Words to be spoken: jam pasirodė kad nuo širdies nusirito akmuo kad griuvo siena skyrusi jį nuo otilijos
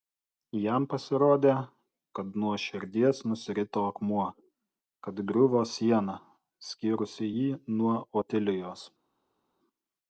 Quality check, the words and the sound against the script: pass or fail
pass